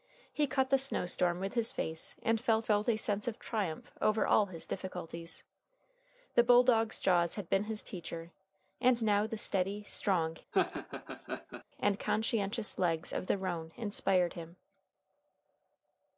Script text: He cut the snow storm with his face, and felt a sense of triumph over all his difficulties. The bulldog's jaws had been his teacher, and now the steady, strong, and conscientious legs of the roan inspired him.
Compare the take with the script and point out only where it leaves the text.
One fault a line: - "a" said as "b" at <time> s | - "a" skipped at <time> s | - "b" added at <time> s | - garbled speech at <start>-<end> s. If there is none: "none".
- "felt" added at 2.6 s